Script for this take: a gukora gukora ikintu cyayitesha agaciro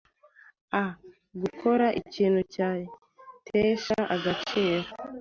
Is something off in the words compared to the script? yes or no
yes